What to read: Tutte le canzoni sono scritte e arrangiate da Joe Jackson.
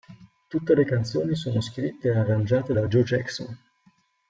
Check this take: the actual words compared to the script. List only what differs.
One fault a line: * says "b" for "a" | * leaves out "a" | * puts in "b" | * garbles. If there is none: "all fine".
all fine